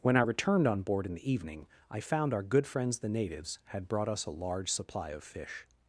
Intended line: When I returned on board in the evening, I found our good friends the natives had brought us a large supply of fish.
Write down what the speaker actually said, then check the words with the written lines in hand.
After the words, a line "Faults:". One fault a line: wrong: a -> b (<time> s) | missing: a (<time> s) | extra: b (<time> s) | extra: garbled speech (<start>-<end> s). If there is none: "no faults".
When I returned on board in the evening, I found our good friends the natives had brought us a large supply of fish.
Faults:
no faults